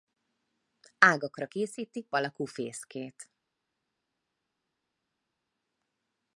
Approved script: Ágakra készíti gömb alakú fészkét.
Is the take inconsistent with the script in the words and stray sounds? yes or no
yes